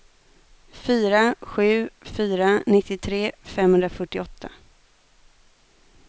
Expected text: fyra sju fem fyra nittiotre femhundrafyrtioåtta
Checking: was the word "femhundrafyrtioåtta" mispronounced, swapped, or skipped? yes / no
no